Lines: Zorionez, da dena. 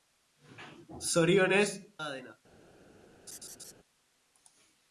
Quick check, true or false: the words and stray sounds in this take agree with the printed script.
false